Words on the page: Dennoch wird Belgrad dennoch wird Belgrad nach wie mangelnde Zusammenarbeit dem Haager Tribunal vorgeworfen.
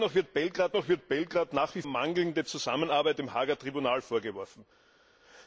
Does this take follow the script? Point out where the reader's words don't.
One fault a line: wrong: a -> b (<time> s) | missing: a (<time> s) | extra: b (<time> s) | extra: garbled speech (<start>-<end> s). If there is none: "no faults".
no faults